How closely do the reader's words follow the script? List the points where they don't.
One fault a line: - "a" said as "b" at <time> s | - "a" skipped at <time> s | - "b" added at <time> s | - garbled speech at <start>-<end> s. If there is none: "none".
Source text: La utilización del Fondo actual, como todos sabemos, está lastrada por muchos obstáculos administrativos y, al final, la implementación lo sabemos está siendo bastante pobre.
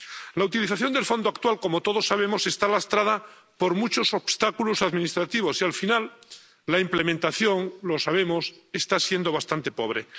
none